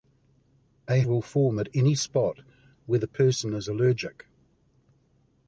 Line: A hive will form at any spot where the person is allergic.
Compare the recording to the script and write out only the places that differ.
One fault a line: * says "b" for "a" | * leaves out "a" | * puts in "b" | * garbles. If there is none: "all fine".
* leaves out "hive"